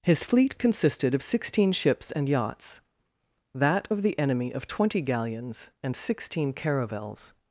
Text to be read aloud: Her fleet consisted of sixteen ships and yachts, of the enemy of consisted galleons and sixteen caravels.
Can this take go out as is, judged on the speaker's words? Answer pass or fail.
fail